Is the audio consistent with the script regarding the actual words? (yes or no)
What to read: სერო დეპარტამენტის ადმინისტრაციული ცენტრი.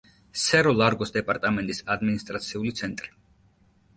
no